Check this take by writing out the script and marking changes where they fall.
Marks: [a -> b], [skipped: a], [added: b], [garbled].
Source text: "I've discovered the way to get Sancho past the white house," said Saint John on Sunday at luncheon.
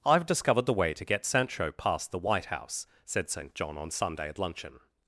"I've discovered the way to get Sancho past the white house," said Saint John on Sunday at luncheon.